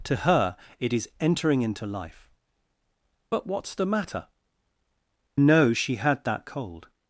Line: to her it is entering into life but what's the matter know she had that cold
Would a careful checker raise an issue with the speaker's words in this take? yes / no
no